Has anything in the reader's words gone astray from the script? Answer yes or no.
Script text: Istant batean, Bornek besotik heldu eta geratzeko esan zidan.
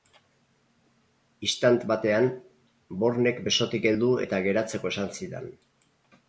no